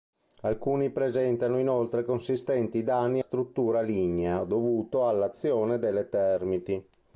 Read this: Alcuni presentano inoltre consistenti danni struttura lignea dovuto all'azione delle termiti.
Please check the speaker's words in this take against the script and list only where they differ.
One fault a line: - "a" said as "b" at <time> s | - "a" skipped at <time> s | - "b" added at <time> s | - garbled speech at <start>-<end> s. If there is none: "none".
none